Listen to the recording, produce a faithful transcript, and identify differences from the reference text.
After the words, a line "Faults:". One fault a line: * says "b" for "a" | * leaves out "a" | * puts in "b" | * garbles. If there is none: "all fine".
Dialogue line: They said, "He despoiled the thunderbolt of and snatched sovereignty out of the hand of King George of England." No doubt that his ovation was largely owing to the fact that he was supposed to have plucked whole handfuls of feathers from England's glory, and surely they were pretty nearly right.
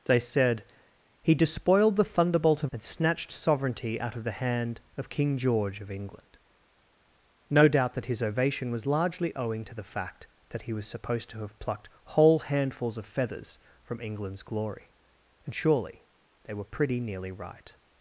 They said, "He despoiled the thunderbolt of and snatched sovereignty out of the hand of King George of England." No doubt that his ovation was largely owing to the fact that he was supposed to have plucked whole handfuls of feathers from England's glory, and surely they were pretty nearly right.
Faults:
all fine